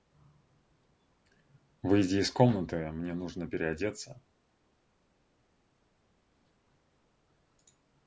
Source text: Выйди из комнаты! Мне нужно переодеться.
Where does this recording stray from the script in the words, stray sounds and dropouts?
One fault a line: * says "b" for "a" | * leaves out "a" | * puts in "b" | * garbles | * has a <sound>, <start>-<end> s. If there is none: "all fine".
all fine